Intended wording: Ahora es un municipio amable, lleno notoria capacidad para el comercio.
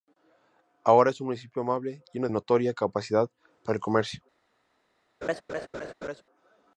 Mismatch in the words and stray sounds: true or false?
true